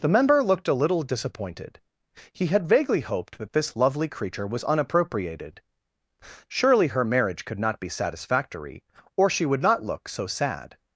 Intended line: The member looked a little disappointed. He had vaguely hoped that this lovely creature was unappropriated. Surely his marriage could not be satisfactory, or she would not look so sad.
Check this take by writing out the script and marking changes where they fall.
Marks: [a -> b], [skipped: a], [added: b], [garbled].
The member looked a little disappointed. He had vaguely hoped that this lovely creature was unappropriated. Surely [his -> her] marriage could not be satisfactory, or she would not look so sad.